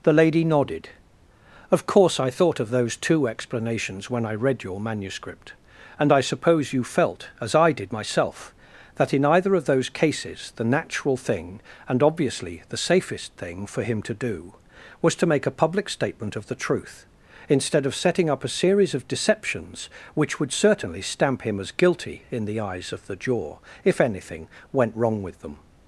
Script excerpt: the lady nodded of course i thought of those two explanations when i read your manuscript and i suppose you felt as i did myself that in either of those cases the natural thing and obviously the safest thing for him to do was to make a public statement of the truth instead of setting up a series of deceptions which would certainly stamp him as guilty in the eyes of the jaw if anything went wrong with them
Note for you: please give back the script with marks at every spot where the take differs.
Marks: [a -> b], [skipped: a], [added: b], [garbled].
the lady nodded of course i thought of those two explanations when i read your manuscript and i suppose you felt as i did myself that in either of those cases the natural thing and obviously the safest thing for him to do was to make a public statement of the truth instead of setting up a series of deceptions which would certainly stamp him as guilty in the eyes of the jaw if anything went wrong with them